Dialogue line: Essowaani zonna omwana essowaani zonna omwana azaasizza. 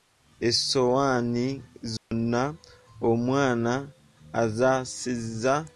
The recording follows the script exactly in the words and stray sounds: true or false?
false